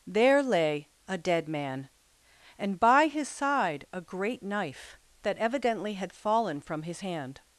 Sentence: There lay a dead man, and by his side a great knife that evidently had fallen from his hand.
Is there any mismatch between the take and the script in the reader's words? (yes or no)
no